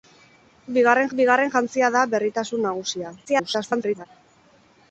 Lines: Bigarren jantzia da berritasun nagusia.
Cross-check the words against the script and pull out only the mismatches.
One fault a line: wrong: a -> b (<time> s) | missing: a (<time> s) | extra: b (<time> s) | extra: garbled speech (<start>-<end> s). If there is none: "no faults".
extra: bigarren (1.2 s)
extra: garbled speech (3.2-4.1 s)